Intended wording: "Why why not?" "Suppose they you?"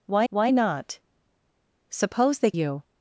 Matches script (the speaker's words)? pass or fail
pass